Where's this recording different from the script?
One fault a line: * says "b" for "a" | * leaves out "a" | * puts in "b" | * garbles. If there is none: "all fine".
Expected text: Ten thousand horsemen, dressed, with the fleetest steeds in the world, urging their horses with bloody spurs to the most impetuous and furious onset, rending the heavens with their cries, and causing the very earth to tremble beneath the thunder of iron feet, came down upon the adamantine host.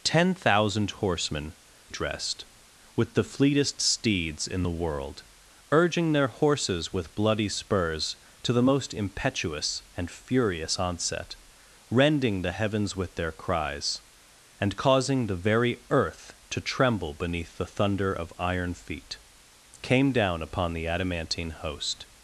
all fine